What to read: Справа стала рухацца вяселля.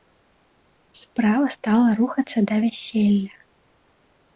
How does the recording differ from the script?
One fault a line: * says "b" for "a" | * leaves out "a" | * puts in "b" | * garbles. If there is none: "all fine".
* puts in "да"